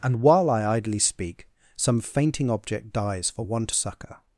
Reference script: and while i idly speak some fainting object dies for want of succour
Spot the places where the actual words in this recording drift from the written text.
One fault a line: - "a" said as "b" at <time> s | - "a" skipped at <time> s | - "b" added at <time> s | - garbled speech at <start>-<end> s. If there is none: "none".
- "of" skipped at 3.7 s